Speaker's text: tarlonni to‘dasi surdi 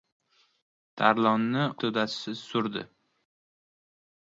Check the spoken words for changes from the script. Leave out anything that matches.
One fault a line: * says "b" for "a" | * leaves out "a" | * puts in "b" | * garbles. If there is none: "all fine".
all fine